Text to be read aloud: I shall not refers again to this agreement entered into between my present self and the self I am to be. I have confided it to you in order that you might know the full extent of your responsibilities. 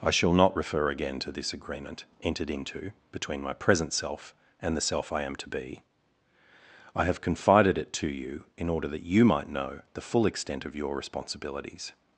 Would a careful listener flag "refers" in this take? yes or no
yes